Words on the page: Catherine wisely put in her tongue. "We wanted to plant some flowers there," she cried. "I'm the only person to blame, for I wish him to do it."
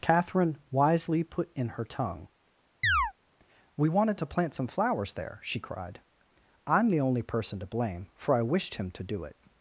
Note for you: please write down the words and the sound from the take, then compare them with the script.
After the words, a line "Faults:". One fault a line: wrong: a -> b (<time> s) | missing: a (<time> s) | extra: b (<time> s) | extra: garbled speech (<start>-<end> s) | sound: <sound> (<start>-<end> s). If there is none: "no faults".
Catherine wisely put in her tongue. "We wanted to plant some flowers there," she cried. "I'm the only person to blame, for I wished him to do it."
Faults:
sound: chirp (2.8-3.1 s)
wrong: wish -> wished (8.4 s)